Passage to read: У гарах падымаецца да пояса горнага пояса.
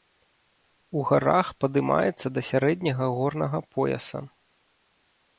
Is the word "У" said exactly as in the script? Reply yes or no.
yes